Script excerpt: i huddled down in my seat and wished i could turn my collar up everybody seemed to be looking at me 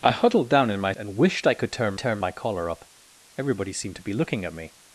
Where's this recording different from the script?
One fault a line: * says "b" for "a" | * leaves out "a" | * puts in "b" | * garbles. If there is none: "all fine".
* leaves out "seat"
* puts in "turn"